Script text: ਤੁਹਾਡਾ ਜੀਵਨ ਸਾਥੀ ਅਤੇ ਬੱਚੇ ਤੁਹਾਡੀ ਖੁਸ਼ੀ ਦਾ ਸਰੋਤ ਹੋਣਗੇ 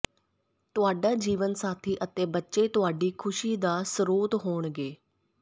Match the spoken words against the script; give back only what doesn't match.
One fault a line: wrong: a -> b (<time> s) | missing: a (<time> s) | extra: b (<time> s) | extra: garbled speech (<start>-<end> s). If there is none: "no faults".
no faults